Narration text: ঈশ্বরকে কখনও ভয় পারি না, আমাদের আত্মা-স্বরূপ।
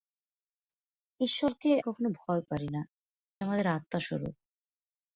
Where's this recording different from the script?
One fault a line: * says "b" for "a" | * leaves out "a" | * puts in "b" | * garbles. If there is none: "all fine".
all fine